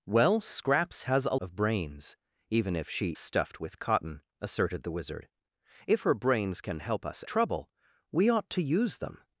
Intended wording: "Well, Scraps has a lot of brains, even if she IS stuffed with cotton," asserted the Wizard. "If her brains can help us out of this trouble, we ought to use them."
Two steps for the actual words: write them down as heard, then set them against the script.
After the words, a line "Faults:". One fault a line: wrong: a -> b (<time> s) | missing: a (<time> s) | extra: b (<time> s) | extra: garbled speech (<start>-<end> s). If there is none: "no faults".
"Well, Scraps has a of brains, even if she Stuffed with cotton," asserted the Wizard. "If her brains can help us trouble, we ought to use them."
Faults:
missing: lot (1.4 s)
missing: IS (3.1 s)
missing: out of this (7.2 s)